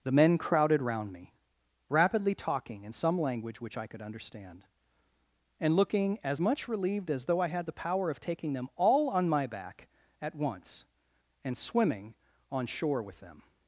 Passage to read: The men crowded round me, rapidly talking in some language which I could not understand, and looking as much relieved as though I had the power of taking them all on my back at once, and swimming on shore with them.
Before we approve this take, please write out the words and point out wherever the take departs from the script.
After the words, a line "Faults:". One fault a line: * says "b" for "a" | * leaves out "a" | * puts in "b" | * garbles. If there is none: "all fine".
The men crowded round me, rapidly talking in some language which I could understand, and looking as much relieved as though I had the power of taking them all on my back at once, and swimming on shore with them.
Faults:
* leaves out "not"